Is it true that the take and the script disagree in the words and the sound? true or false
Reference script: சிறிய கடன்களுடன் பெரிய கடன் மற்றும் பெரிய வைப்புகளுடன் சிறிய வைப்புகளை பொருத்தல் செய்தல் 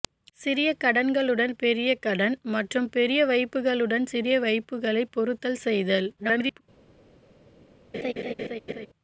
true